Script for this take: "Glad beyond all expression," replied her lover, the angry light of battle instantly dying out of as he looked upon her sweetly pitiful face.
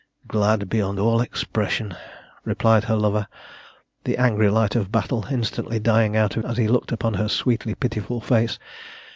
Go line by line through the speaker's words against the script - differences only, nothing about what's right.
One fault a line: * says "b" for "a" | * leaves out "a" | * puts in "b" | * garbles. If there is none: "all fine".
all fine